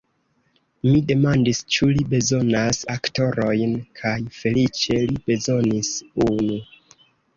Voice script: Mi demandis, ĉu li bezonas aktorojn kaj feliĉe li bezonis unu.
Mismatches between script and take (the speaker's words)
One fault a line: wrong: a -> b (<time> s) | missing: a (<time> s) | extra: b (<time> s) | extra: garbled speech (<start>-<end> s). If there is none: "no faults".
no faults